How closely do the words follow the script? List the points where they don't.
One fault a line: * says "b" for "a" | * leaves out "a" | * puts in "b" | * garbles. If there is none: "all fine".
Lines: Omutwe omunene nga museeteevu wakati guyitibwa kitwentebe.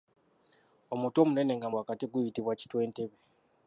* leaves out "museeteevu"